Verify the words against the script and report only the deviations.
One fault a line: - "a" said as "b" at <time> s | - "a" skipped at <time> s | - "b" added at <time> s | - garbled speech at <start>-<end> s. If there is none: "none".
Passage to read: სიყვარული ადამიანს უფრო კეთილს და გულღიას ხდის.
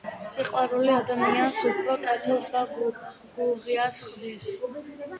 none